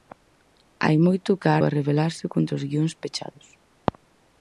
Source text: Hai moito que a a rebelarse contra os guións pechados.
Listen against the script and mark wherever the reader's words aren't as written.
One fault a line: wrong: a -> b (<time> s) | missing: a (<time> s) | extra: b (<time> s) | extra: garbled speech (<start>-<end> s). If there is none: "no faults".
no faults